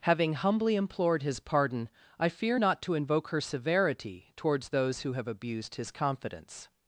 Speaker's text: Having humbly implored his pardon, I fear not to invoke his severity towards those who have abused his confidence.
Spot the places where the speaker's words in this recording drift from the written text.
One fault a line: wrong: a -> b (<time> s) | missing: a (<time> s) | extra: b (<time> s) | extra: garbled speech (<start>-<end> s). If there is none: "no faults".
wrong: his -> her (3.3 s)